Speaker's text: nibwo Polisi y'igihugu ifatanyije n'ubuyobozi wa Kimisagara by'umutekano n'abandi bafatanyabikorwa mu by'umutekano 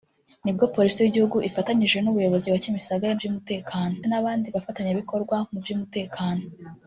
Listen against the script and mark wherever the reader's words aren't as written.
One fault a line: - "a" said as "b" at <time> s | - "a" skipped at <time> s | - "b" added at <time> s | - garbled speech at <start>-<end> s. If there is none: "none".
none